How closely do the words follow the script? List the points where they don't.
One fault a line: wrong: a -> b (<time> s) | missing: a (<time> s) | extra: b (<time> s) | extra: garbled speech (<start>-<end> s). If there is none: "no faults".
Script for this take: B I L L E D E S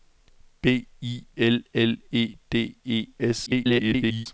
extra: garbled speech (3.5-4.3 s)